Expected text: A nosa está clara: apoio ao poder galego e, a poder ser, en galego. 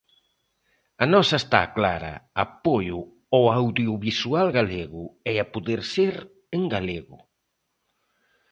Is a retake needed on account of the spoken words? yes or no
yes